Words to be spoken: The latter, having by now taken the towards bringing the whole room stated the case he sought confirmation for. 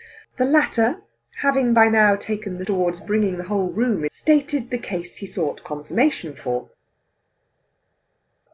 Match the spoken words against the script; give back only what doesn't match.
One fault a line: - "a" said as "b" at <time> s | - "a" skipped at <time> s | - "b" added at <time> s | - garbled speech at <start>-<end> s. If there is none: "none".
none